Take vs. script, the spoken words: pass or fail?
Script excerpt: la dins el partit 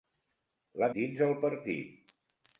pass